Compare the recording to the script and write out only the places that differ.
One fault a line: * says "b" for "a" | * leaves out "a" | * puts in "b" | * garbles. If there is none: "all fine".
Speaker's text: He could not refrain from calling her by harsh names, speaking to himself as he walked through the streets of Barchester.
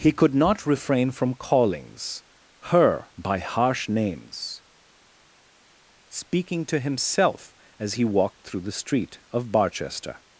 * says "callings" for "calling"
* says "street" for "streets"